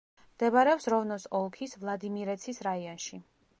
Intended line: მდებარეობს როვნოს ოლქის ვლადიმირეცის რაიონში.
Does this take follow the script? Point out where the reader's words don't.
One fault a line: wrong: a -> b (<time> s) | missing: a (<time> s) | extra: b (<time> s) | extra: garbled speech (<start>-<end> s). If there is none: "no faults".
no faults